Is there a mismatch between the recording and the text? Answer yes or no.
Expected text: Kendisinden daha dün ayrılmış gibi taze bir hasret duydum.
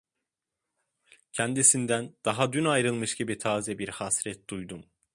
no